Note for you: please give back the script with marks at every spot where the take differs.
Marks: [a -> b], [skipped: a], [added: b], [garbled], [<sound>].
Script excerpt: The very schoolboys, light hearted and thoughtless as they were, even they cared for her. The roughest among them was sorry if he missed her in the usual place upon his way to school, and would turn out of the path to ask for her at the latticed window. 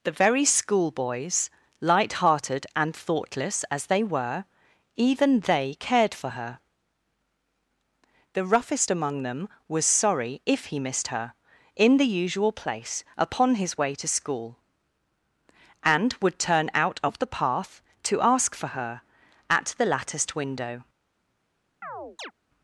The very schoolboys, light hearted and thoughtless as they were, even they cared for her. The roughest among them was sorry if he missed her in the usual place upon his way to school, and would turn out of the path to ask for her at the latticed window. [chirp]